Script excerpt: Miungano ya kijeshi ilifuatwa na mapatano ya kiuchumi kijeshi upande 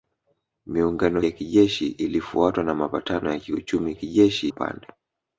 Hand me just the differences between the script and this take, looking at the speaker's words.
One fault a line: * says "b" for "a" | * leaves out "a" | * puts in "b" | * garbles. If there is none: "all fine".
all fine